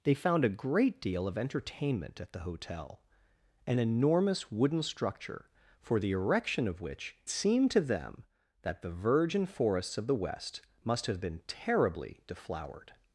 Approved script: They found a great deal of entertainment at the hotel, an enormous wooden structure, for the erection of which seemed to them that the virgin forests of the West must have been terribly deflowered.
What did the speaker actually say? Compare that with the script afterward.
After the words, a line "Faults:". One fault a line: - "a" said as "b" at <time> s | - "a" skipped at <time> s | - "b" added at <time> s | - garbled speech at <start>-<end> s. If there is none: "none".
They found a great deal of entertainment at the hotel, an enormous wooden structure, for the erection of which seemed to them that the virgin forests of the West must have been terribly deflowered.
Faults:
none